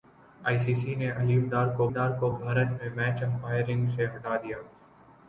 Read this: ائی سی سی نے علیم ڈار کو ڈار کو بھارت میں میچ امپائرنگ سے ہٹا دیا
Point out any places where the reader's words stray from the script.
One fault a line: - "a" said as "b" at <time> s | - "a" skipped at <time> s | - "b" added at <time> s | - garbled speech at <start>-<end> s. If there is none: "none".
none